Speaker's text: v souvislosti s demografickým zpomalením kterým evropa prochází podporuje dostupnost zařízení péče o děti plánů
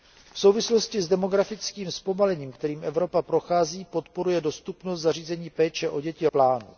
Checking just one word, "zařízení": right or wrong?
right